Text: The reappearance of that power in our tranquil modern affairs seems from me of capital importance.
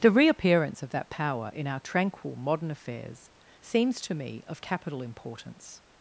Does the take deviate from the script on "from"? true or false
true